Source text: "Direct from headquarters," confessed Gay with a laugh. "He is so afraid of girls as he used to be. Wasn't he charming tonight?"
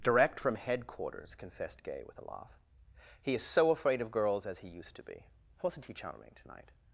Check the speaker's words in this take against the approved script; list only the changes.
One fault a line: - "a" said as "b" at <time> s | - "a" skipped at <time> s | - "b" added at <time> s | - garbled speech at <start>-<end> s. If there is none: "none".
none